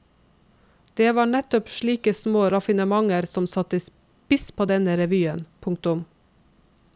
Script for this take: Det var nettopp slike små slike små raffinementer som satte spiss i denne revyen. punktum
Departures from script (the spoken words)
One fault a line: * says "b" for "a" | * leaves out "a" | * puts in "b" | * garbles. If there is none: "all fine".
* leaves out "slike små"
* says "på" for "i"